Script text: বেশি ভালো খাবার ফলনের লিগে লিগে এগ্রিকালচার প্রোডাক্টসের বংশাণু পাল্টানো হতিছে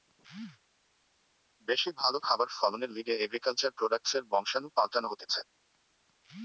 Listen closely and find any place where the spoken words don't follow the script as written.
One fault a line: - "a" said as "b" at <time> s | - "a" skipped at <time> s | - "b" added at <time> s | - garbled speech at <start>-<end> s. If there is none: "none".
- "লিগে" skipped at 3.1 s